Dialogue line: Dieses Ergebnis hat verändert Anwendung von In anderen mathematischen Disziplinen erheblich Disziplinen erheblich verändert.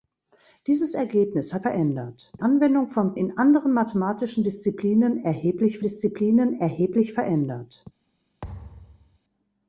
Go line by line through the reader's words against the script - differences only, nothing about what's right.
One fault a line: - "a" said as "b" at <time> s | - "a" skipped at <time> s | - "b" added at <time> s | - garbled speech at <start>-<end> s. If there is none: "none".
none